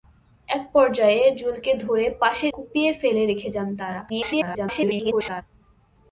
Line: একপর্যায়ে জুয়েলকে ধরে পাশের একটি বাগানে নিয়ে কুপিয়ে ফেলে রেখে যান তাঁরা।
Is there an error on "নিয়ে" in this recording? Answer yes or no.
yes